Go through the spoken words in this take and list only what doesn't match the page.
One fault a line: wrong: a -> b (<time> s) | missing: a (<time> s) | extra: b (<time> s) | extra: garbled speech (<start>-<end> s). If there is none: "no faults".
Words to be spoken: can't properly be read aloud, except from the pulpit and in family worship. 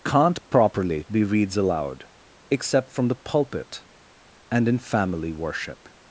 wrong: read -> reads (1.2 s)